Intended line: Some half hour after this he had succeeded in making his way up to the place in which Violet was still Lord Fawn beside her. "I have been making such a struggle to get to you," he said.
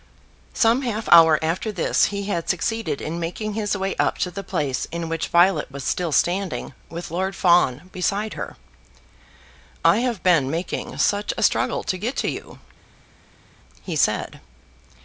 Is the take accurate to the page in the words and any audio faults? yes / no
no